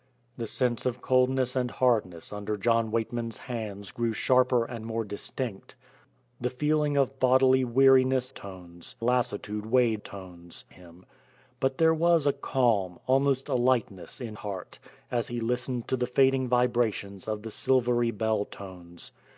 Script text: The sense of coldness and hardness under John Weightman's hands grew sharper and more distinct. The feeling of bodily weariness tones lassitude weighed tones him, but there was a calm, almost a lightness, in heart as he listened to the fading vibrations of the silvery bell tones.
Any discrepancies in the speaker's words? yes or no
no